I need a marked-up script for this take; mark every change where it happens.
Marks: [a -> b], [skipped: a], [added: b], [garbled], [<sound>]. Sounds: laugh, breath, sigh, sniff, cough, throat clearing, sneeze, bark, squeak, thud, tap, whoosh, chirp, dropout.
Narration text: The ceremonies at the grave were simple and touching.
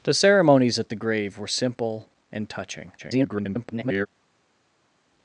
The ceremonies at the grave were simple and touching. [garbled]